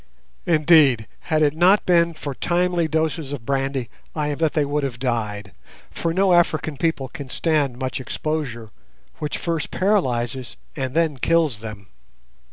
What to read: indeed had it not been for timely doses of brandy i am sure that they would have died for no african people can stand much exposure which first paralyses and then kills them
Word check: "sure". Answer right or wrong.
wrong